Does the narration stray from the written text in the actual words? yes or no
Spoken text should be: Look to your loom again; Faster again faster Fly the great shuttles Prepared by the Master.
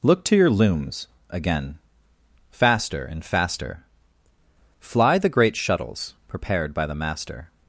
yes